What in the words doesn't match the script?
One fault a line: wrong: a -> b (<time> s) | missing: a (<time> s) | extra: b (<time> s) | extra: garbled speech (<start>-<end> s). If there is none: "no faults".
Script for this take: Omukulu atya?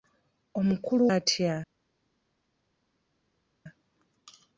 no faults